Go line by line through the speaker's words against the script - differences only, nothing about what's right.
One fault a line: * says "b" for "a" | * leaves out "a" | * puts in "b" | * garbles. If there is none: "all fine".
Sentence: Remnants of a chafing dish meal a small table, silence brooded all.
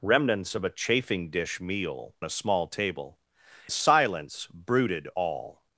all fine